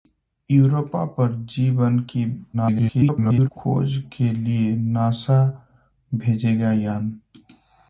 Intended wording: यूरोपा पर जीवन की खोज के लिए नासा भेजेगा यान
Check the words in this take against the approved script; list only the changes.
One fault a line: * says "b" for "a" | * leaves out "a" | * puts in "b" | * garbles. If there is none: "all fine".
* garbles